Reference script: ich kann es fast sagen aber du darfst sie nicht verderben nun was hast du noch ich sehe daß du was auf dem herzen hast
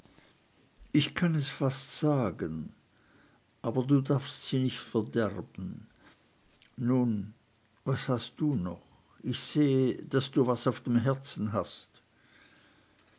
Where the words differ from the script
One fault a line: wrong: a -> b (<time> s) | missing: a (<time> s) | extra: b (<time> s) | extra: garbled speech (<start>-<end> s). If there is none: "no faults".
no faults